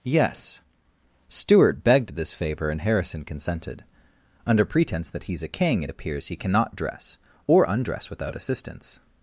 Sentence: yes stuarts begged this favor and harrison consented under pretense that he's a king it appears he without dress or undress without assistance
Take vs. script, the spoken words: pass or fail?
fail